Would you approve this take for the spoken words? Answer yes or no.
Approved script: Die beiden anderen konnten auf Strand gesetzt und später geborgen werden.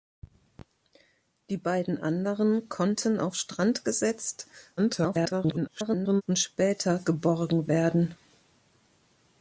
no